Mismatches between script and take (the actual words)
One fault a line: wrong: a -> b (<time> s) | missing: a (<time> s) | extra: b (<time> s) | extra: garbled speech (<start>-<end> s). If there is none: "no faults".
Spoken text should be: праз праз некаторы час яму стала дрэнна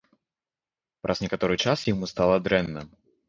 missing: праз (1.2 s)